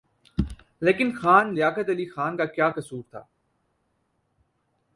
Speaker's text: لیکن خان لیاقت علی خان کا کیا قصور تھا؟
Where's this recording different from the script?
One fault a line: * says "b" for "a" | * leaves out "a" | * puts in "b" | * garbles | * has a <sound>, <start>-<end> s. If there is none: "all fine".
all fine